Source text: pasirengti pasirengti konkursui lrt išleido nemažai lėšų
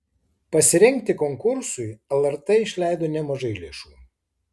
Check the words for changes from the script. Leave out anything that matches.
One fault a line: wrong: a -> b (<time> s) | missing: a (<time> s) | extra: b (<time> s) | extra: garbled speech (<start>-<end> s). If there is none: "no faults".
missing: pasirengti (1.1 s)